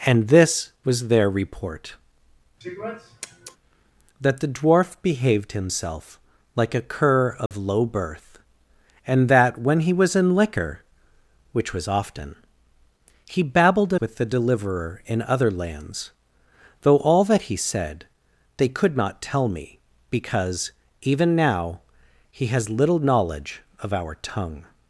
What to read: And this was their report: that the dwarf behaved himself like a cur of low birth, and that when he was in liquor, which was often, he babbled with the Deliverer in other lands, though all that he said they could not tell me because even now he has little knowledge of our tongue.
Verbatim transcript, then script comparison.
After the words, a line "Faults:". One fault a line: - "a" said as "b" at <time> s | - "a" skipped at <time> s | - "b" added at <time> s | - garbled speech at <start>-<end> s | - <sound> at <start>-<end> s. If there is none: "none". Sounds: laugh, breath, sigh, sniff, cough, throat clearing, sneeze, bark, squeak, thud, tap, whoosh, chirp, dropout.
And this was their report: that the dwarf behaved himself like a cur of low birth, and that when he was in liquor, which was often, he babbled with the Deliverer in other lands, though all that he said they could not tell me because even now he has little knowledge of our tongue.
Faults:
- sniff at 2.6-3.6 s
- dropout at 7.5-7.5 s